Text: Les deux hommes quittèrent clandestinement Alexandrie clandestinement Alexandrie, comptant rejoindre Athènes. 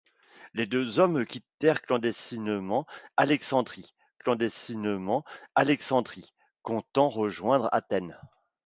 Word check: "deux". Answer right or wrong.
right